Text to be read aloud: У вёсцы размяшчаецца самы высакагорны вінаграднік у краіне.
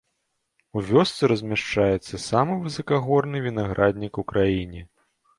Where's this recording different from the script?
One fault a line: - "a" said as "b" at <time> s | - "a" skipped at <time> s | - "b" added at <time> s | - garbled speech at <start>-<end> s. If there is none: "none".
none